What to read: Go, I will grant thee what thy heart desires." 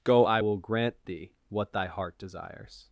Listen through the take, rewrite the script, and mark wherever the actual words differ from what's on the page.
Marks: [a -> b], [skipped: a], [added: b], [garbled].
Go, I will grant thee what thy heart desires."